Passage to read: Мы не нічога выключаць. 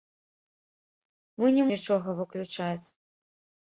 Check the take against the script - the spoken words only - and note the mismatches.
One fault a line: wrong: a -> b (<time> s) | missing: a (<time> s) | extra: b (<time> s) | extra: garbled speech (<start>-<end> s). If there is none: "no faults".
no faults